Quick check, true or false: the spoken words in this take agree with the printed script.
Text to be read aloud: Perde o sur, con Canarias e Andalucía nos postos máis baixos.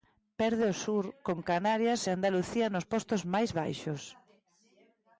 true